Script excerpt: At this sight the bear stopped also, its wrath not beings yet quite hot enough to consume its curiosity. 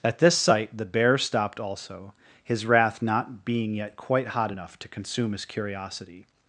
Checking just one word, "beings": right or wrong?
wrong